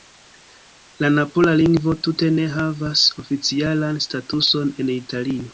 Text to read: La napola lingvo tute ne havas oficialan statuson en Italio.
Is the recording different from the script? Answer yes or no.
no